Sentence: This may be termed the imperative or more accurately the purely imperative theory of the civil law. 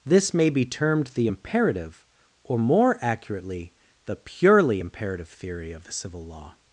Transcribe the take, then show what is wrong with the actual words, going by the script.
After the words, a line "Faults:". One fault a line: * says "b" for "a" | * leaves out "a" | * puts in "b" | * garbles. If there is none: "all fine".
This may be termed the imperative or more accurately the purely imperative theory of the civil law.
Faults:
all fine